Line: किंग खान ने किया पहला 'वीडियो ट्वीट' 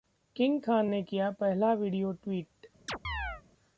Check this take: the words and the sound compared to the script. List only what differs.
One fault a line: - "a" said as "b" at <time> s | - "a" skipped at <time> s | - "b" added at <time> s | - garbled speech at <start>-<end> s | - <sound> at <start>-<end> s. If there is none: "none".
- chirp at 2.9-3.4 s